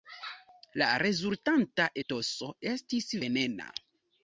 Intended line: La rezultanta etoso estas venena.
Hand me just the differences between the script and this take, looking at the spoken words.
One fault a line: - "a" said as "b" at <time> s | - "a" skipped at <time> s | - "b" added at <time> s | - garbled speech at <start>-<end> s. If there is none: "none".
- "estas" said as "estis" at 2.8 s